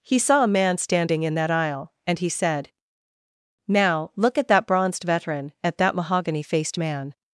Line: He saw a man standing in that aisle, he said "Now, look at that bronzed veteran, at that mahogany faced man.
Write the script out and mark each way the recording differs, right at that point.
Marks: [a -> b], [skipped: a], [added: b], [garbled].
He saw a man standing in that aisle, [added: and] he said "Now, look at that bronzed veteran, at that mahogany faced man.